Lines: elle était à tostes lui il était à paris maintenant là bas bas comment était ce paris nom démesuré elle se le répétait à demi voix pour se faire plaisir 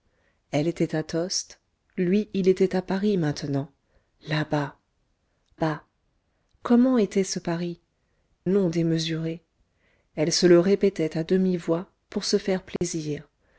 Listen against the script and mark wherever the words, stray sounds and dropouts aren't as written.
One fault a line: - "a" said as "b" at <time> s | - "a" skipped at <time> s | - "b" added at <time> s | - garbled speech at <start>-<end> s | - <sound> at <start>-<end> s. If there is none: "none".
- dropout at 12.8-12.8 s